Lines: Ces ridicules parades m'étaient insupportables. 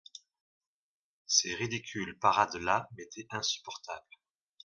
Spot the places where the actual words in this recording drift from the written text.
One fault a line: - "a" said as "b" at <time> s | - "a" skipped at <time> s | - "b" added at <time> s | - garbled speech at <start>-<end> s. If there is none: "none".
- "là" added at 2.5 s